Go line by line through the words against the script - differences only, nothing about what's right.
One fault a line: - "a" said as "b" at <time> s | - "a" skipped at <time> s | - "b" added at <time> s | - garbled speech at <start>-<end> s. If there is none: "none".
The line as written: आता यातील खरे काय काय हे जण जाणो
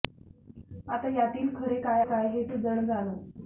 none